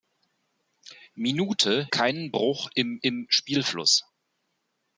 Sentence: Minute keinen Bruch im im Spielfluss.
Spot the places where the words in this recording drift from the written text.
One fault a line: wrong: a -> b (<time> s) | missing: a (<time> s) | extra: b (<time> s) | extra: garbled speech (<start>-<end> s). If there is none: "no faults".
no faults